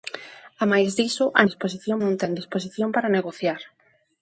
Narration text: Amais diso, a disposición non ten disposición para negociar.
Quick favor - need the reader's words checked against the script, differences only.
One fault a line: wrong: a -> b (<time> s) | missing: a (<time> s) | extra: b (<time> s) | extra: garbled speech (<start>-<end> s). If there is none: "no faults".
no faults